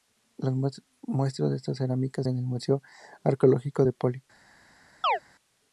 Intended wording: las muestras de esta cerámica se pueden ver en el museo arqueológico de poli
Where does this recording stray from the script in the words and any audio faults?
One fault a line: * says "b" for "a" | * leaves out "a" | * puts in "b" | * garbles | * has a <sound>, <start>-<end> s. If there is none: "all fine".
* leaves out "se pueden ver"
* has a chirp, 5.0-5.2 s